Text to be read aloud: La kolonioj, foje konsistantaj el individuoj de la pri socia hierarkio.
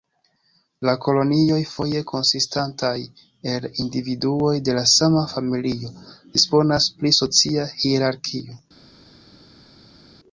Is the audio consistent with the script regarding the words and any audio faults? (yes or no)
no